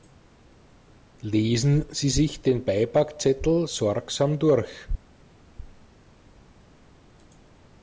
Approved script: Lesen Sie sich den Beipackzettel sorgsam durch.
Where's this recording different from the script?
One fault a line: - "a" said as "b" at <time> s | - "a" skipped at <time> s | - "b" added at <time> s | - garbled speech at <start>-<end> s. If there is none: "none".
none